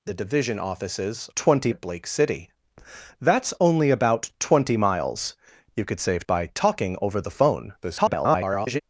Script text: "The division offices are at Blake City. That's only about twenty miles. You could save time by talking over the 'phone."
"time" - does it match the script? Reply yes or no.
no